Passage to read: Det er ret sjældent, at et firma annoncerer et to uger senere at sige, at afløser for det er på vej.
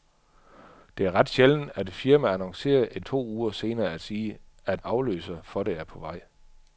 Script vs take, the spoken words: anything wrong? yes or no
no